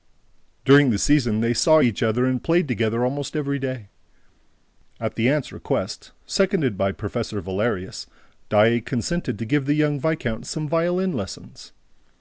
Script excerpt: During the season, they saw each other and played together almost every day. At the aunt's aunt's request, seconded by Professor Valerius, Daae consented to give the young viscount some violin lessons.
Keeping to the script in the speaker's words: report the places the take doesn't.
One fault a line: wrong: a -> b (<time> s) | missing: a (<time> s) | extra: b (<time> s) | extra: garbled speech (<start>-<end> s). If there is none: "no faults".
missing: aunt's (5.5 s)